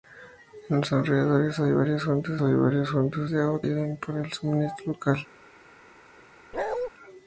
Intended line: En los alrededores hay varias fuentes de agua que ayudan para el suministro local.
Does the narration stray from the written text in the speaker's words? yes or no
yes